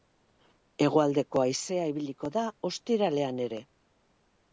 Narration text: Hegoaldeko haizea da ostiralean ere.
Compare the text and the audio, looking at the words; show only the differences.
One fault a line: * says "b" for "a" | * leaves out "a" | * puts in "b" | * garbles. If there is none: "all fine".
* puts in "ibiliko"